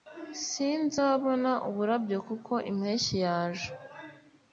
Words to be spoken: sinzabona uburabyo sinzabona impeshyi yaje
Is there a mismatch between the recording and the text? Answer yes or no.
yes